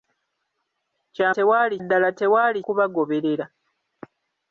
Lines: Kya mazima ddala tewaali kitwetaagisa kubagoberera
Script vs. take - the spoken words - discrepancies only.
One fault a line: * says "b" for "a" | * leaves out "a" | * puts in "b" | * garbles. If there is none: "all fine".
* says "tewaali" for "mazima"
* leaves out "kitwetaagisa"